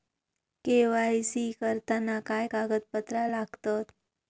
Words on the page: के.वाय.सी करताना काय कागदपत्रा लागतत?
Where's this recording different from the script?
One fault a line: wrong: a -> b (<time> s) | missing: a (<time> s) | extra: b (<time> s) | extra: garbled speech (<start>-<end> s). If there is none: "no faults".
no faults